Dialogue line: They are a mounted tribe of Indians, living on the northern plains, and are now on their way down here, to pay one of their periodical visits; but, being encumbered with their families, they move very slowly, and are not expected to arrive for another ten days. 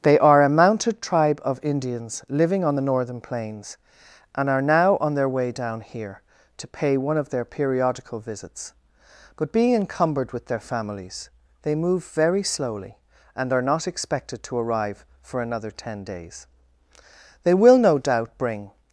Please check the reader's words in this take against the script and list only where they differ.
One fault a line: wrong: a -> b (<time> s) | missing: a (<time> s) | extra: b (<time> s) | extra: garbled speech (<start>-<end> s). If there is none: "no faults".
extra: They will no doubt bring (17.4 s)